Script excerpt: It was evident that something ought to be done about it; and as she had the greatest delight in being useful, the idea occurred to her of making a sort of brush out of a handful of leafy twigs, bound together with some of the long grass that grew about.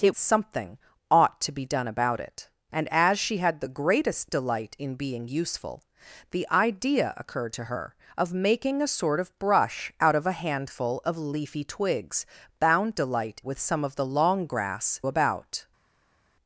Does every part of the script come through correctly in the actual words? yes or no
no